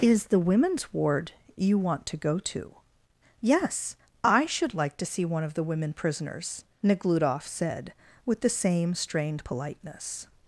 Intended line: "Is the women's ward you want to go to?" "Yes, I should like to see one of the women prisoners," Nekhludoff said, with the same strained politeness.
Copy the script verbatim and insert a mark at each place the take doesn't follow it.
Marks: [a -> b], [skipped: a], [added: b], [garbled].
"Is the women's ward you want to go to?" "Yes, I should like to see one of the women prisoners," Nekhludoff said, with the same strained politeness.